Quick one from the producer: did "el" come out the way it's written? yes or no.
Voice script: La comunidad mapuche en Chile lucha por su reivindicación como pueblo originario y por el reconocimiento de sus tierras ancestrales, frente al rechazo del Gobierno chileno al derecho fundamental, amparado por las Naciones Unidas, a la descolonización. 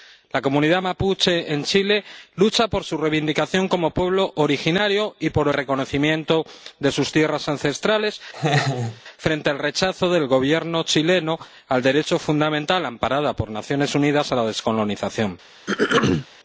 no